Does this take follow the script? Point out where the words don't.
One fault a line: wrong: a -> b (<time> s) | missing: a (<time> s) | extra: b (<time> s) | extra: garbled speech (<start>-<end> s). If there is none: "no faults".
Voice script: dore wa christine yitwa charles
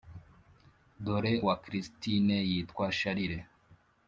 no faults